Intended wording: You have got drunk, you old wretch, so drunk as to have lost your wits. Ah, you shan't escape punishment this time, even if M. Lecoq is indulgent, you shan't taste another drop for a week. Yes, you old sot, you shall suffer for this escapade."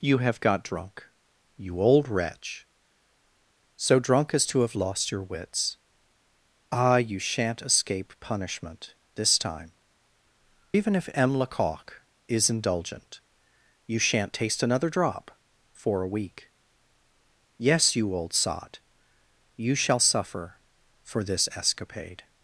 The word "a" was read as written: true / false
true